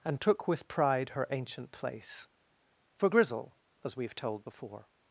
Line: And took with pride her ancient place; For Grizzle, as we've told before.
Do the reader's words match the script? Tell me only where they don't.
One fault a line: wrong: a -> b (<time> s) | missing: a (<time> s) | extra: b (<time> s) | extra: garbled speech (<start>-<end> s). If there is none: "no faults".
no faults